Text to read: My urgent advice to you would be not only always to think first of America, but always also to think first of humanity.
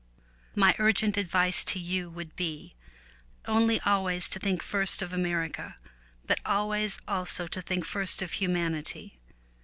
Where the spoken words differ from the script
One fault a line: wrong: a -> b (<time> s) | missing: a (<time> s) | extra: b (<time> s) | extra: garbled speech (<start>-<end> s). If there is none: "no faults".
missing: not (2.7 s)